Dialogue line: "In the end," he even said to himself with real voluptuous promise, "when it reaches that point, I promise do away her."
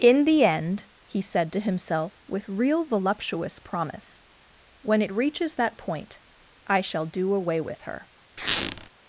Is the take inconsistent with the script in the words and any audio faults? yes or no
yes